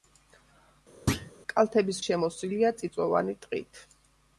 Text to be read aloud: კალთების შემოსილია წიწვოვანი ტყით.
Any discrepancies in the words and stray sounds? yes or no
yes